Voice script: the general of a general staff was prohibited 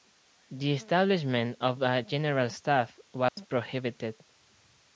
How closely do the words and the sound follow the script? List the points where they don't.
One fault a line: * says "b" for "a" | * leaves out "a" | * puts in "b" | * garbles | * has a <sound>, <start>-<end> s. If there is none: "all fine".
* says "establishment" for "general"
* has a dropout, 3.3-3.4 s